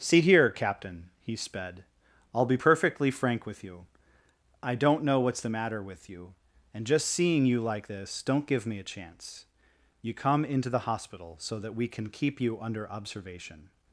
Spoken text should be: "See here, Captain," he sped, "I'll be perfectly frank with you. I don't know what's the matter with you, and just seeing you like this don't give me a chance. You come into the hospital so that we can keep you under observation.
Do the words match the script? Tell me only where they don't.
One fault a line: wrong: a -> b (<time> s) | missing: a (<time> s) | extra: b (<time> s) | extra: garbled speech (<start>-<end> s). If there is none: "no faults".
no faults